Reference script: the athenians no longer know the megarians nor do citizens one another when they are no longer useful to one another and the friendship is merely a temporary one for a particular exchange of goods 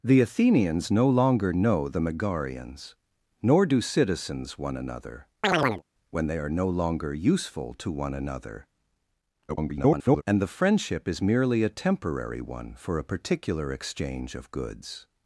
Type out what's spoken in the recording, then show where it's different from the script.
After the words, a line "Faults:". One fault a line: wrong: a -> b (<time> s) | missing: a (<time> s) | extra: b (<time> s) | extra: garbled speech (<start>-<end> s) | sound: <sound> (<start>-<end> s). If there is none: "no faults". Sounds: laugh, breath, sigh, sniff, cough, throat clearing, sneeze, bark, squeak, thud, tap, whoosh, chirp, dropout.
the athenians no longer know the megarians nor do citizens one another when they are no longer useful to one another [garbled] and the friendship is merely a temporary one for a particular exchange of goods
Faults:
sound: chirp (5.4-5.8 s)
extra: garbled speech (9.5-10.2 s)